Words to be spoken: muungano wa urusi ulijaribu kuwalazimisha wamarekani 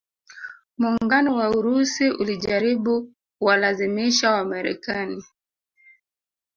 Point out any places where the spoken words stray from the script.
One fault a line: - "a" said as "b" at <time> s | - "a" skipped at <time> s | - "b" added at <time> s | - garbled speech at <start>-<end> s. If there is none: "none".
none